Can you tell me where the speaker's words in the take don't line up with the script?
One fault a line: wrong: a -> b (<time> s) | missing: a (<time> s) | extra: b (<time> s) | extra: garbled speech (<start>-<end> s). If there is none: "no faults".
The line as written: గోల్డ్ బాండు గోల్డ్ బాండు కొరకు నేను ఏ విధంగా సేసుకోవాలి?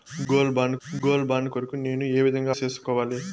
no faults